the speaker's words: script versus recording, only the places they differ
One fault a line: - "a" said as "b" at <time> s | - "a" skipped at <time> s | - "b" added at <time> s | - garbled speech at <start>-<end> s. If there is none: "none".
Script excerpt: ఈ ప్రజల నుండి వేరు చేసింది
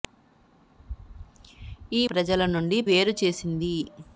none